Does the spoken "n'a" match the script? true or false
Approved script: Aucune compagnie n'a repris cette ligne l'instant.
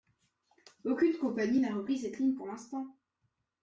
true